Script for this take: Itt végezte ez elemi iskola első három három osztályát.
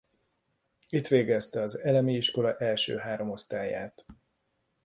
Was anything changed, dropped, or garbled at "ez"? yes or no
yes